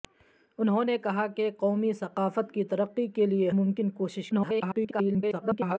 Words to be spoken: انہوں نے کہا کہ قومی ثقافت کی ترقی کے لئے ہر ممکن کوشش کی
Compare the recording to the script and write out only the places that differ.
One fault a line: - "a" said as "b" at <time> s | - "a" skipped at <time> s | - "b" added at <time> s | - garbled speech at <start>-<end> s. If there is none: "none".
- "ہر" skipped at 3.5 s
- garbled speech at 4.3-5.8 s